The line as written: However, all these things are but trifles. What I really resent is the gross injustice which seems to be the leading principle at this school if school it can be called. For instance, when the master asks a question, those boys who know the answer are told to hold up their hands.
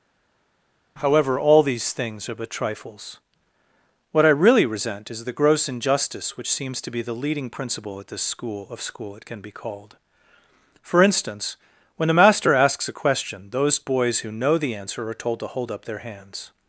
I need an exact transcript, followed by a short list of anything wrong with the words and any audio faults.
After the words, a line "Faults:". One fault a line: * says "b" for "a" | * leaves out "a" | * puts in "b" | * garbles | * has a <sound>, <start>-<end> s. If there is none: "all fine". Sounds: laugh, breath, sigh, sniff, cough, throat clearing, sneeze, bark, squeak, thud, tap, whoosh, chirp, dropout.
However, all these things are but trifles. What I really resent is the gross injustice which seems to be the leading principle at this school of school it can be called. For instance, when the master asks a question, those boys who know the answer are told to hold up their hands.
Faults:
* says "of" for "if"